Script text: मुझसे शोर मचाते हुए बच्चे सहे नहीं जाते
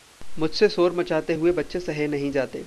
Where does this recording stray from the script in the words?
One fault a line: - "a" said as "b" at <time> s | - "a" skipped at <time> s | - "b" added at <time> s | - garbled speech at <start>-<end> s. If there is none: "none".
none